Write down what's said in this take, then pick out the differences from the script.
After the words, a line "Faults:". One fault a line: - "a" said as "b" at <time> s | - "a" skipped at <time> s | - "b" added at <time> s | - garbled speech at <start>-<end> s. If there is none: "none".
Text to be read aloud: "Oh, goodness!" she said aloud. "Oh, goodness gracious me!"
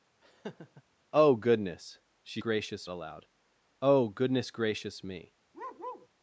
"Oh, goodness!" she gracious aloud. "Oh, goodness gracious me!"
Faults:
- "said" said as "gracious" at 2.4 s